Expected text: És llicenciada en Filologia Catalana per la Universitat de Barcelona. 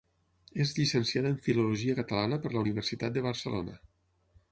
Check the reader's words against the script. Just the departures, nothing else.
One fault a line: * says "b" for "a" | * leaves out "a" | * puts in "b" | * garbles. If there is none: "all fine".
all fine